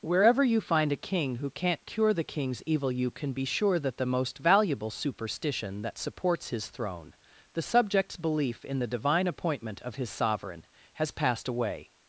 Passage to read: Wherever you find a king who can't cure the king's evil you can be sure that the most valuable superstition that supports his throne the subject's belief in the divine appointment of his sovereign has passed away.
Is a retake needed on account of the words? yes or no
no